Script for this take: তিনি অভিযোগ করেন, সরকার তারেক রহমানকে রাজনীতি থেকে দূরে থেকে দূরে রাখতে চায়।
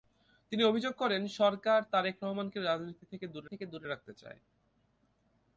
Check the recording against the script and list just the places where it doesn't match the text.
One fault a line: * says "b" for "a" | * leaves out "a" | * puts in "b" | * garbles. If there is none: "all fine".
all fine